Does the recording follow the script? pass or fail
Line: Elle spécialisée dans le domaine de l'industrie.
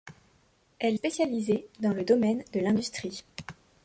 pass